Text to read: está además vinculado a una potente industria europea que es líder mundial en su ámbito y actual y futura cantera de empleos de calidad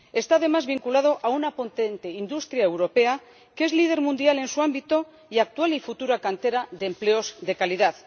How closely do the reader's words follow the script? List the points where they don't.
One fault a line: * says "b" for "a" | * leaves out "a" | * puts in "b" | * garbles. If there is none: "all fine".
all fine